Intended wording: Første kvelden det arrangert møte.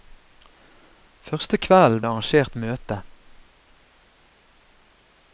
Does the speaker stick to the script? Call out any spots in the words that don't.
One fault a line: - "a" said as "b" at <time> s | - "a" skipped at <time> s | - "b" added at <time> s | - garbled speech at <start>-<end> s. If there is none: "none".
none